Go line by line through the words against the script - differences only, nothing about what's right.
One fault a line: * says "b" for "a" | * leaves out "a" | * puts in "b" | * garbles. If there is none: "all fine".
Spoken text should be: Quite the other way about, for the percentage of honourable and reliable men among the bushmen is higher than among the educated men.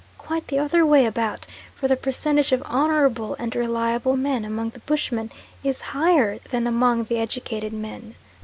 all fine